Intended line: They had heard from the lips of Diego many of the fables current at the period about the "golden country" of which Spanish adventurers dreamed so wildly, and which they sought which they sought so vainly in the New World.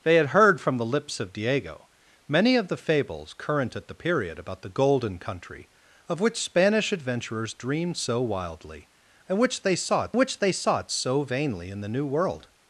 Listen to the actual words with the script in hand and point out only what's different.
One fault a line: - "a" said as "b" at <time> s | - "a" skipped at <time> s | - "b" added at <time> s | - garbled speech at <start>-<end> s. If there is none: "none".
none